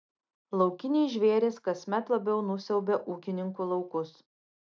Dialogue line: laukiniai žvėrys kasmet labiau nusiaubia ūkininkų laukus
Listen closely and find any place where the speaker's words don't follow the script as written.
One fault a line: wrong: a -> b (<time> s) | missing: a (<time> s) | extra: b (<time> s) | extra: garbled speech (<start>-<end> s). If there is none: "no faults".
no faults